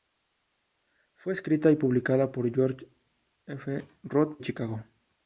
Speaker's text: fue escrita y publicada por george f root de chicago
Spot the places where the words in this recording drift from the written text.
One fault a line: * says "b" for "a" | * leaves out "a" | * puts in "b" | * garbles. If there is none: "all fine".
* leaves out "de"